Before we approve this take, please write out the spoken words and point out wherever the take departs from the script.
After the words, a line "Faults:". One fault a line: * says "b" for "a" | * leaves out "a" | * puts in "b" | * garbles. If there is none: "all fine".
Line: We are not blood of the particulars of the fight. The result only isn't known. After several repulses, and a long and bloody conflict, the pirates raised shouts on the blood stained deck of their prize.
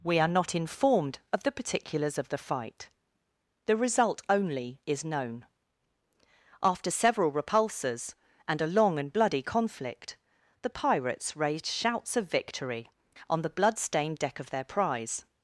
We are not informed of the particulars of the fight. The result only is known. After several repulses, and a long and bloody conflict, the pirates raised shouts of victory on the blood stained deck of their prize.
Faults:
* says "informed" for "blood"
* says "is" for "isn't"
* puts in "of victory"